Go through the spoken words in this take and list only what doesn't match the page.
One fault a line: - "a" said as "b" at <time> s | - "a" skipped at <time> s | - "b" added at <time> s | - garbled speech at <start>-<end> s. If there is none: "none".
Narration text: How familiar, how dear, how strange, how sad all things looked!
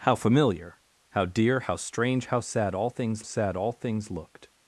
- "sad all things" added at 3.2 s